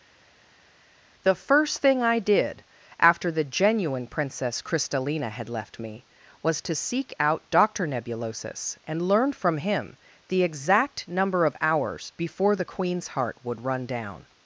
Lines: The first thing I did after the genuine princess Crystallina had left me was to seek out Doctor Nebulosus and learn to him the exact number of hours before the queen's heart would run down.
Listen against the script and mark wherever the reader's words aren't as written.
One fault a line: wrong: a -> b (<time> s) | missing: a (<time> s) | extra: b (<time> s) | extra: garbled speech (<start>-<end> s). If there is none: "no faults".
wrong: to -> from (9.3 s)